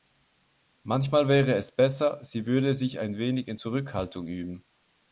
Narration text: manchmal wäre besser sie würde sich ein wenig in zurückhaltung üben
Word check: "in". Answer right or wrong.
right